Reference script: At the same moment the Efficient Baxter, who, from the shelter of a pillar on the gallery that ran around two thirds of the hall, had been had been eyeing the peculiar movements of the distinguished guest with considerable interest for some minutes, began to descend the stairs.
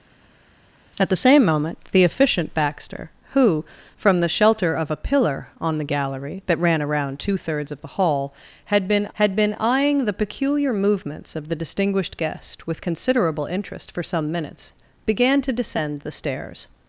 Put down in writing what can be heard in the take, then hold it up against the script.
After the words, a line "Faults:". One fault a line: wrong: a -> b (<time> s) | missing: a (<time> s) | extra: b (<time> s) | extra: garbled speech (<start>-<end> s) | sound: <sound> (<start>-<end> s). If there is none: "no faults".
At the same moment the Efficient Baxter, who, from the shelter of a pillar on the gallery that ran around two thirds of the hall, had been had been eyeing the peculiar movements of the distinguished guest with considerable interest for some minutes, began to descend the stairs.
Faults:
no faults